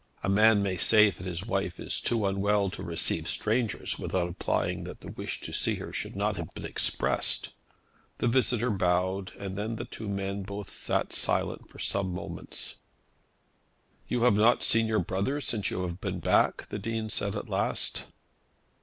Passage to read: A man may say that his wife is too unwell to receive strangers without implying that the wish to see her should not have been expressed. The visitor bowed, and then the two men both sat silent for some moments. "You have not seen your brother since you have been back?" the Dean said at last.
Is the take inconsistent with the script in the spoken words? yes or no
no